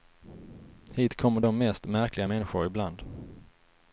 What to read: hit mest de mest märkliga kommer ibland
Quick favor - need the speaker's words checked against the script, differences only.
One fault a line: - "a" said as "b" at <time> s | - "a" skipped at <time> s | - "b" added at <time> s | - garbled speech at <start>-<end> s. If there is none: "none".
- "mest" said as "kommer" at 1.1 s
- "kommer" said as "människor" at 2.2 s